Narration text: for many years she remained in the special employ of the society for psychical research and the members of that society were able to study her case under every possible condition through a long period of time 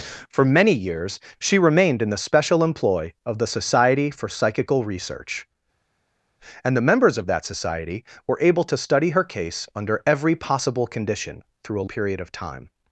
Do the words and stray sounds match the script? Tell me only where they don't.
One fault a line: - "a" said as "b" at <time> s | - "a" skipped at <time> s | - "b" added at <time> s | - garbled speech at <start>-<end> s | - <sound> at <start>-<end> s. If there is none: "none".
- "long" skipped at 11.9 s